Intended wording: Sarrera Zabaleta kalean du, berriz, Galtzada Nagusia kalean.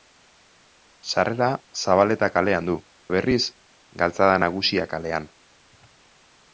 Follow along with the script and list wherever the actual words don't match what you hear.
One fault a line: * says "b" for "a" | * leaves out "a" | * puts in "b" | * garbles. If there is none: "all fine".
all fine